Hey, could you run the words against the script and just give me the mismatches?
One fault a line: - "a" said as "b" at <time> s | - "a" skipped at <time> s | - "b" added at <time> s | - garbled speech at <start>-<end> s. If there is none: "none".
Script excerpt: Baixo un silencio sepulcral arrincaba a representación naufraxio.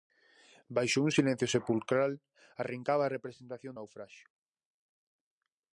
none